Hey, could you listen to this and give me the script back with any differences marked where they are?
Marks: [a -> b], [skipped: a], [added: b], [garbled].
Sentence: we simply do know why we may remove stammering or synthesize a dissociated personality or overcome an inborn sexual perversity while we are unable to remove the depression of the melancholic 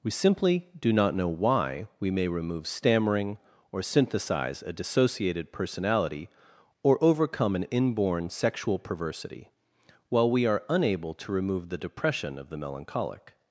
we simply do [added: not] know why we may remove stammering or synthesize a dissociated personality or overcome an inborn sexual perversity while we are unable to remove the depression of the melancholic